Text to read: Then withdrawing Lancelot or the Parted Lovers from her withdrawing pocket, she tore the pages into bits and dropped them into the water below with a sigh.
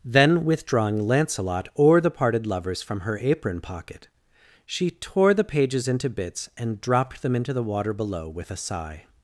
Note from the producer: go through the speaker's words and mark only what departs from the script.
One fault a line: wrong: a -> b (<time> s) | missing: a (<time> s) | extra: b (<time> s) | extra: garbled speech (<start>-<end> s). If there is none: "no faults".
wrong: withdrawing -> apron (3.2 s)